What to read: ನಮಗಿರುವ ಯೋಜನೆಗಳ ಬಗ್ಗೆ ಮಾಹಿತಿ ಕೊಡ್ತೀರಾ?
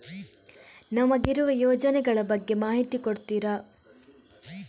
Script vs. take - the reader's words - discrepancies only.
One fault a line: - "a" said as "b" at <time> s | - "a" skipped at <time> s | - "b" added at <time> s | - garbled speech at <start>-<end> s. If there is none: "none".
none